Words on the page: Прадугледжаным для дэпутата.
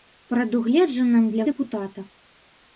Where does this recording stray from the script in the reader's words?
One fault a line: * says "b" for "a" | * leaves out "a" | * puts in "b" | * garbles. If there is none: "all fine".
all fine